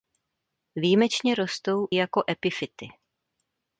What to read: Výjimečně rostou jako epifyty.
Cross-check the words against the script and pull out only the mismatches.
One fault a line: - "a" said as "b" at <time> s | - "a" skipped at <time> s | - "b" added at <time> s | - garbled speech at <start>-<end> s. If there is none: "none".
none